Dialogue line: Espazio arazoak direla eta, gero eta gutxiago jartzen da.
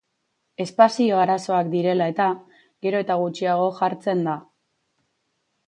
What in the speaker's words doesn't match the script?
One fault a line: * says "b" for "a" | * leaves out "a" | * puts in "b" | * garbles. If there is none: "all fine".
all fine